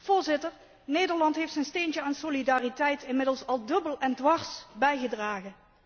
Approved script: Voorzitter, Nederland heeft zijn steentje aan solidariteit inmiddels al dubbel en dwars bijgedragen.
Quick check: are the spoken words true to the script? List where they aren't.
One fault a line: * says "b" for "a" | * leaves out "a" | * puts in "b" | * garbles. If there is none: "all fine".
all fine